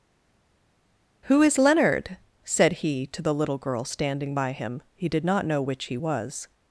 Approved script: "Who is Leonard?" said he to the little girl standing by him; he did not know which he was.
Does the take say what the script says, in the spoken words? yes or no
yes